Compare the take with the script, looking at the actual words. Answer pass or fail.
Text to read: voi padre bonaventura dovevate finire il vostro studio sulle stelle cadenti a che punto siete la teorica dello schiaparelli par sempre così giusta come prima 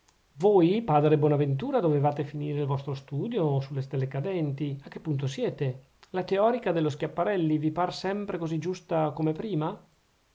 fail